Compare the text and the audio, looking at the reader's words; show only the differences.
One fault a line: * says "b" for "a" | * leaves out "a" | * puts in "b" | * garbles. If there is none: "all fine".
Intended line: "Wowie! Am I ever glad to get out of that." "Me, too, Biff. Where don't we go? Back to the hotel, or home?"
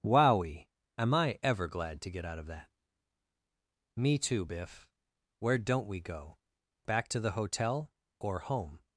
all fine